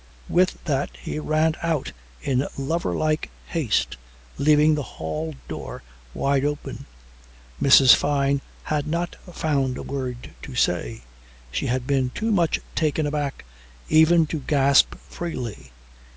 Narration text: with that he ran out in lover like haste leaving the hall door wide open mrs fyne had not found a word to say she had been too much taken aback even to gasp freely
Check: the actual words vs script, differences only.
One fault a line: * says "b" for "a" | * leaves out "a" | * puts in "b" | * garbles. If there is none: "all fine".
all fine